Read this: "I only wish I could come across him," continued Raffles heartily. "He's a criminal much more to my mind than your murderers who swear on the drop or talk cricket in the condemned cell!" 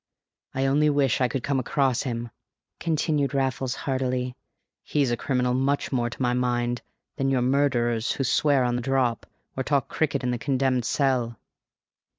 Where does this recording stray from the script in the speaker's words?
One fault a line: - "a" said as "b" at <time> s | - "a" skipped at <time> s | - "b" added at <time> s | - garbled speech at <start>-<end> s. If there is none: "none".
none